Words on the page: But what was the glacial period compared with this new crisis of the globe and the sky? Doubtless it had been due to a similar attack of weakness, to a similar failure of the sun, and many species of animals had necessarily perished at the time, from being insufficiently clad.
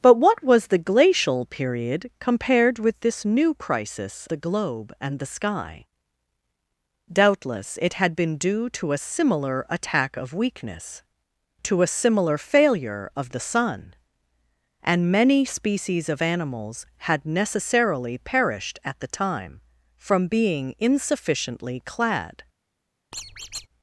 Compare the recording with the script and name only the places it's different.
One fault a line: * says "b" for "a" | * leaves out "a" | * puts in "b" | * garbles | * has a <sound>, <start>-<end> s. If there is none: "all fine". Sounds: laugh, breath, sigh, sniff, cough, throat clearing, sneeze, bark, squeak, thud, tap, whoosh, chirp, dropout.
* leaves out "of"
* has a squeak, 23.1-23.7 s